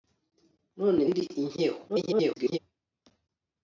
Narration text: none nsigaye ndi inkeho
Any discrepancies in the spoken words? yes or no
yes